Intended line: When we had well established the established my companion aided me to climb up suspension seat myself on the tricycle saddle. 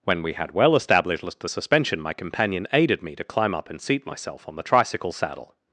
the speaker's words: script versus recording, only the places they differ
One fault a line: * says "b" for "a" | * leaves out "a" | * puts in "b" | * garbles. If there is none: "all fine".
* says "suspension" for "established"
* says "and" for "suspension"